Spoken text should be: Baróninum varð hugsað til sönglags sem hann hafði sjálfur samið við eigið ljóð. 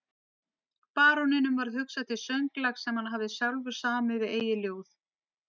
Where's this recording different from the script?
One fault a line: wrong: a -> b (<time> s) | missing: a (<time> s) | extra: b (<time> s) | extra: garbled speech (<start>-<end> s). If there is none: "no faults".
no faults